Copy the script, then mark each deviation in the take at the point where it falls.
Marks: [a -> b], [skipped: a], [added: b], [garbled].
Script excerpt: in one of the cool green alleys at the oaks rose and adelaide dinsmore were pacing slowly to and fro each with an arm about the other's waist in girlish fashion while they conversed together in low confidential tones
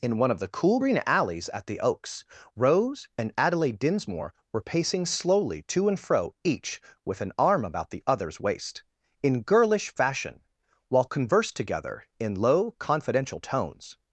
in one of the cool green alleys at the oaks rose and adelaide dinsmore were pacing slowly to and fro each with an arm about the other's waist in girlish fashion while [skipped: they] conversed together in low confidential tones